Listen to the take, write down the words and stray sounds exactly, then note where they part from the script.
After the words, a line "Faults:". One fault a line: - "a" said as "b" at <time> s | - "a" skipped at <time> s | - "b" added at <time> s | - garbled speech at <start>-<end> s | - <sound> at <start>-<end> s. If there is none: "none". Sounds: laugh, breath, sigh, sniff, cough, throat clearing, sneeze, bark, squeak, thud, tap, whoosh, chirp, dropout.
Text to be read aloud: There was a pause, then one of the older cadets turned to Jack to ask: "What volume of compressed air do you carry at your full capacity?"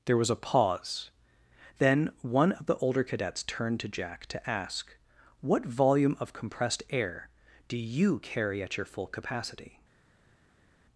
There was a pause, then one of the older cadets turned to Jack to ask: "What volume of compressed air do you carry at your full capacity?"
Faults:
none